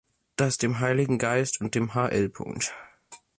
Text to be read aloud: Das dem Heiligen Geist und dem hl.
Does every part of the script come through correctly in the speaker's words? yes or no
yes